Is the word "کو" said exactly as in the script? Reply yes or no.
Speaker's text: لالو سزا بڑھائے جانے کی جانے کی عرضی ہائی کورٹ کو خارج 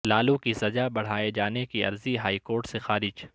no